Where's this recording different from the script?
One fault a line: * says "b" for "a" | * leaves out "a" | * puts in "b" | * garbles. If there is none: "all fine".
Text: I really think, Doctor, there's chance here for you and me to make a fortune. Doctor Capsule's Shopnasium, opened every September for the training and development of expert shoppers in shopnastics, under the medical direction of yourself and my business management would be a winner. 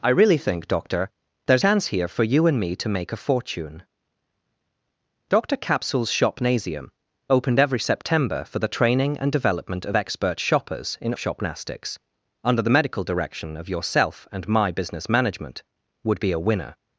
all fine